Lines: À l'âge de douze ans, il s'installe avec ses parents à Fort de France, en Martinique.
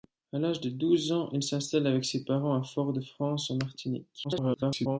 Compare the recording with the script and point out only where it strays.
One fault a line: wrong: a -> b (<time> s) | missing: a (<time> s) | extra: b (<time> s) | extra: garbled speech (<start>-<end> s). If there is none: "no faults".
extra: garbled speech (4.2-5.0 s)